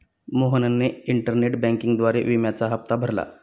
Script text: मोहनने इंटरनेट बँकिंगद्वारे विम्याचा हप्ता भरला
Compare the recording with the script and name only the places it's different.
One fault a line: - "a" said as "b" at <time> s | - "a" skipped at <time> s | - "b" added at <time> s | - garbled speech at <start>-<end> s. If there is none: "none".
none